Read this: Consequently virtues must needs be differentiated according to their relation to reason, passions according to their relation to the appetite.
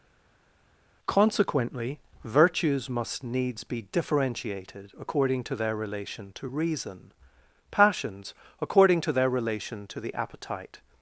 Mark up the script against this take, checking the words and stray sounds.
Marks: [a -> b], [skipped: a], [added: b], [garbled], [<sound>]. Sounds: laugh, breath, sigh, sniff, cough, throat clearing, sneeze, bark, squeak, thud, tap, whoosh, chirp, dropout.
Consequently virtues must needs be differentiated according to their relation to reason, passions according to their relation to the appetite.